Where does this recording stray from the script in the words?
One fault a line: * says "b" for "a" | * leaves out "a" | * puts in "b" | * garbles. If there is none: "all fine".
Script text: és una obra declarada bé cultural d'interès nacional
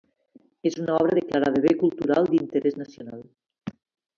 all fine